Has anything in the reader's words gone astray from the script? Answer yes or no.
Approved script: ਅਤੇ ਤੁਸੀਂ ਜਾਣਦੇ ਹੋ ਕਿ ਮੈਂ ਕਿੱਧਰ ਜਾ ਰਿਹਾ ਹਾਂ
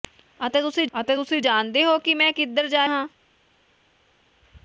yes